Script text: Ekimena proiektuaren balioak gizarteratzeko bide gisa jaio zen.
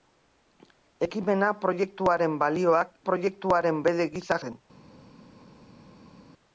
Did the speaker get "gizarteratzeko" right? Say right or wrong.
wrong